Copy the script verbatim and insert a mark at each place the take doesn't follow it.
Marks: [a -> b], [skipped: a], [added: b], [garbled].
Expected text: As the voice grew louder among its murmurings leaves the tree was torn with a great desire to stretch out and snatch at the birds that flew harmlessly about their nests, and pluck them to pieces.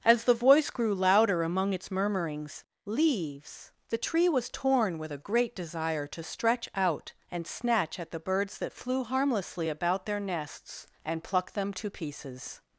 As the voice grew louder among its murmurings leaves the tree was torn with a great desire to stretch out and snatch at the birds that flew harmlessly about their nests, and pluck them to pieces.